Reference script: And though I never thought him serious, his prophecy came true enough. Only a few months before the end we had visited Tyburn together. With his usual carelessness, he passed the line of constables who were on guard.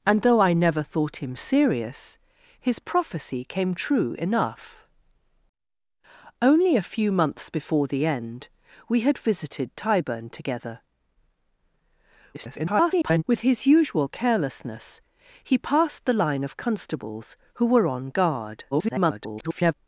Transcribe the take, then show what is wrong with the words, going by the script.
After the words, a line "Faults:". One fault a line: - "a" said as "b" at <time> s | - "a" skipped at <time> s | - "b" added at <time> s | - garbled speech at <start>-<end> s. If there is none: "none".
And though I never thought him serious, his prophecy came true enough. Only a few months before the end we had visited Tyburn together. [garbled] With his usual carelessness, he passed the line of constables who were on guard. [garbled]
Faults:
- garbled speech at 12.3-13.2 s
- garbled speech at 18.7-19.7 s